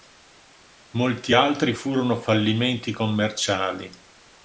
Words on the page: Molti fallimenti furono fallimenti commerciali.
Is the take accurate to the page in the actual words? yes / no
no